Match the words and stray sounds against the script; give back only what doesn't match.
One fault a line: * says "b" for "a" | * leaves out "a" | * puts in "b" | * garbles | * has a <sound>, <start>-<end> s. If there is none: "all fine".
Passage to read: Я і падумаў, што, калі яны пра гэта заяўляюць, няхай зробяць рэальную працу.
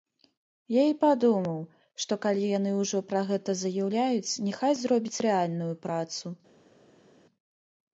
* puts in "ўжо"